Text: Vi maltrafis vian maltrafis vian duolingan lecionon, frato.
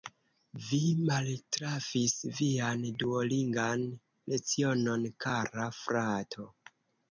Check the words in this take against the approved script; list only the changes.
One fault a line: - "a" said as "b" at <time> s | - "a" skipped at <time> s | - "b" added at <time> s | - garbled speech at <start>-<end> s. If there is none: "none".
- "maltrafis vian" skipped at 2.8 s
- "kara" added at 5.3 s